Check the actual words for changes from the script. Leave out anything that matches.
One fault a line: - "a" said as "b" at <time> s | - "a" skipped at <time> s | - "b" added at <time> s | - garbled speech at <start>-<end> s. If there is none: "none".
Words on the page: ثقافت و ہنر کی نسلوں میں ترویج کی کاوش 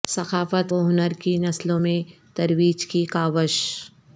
none